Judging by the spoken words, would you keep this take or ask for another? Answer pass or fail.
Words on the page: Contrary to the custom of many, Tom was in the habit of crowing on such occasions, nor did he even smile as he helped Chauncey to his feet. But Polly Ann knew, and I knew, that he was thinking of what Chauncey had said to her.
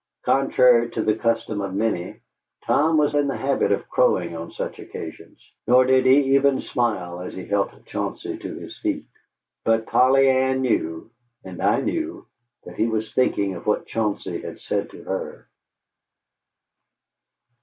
pass